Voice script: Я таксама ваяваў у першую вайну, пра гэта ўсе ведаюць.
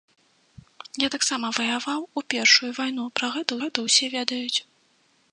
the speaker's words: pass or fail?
fail